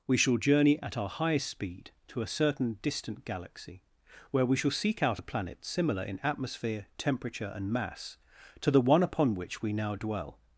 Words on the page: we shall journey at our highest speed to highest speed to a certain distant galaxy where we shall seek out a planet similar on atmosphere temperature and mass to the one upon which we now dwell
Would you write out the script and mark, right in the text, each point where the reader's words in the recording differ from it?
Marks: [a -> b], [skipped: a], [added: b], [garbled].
we shall journey at our highest speed to [skipped: highest speed to] a certain distant galaxy where we shall seek out a planet similar [on -> in] atmosphere temperature and mass to the one upon which we now dwell